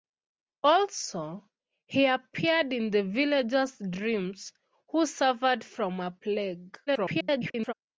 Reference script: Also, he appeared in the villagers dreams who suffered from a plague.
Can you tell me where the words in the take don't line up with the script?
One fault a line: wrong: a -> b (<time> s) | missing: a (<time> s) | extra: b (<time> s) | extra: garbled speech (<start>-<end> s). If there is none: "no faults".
extra: garbled speech (6.9-7.7 s)